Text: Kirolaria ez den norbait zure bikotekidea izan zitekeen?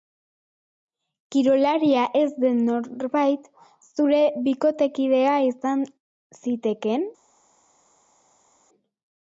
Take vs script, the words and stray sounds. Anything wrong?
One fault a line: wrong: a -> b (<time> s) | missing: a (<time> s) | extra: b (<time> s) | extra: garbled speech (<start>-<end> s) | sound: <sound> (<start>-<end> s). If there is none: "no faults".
no faults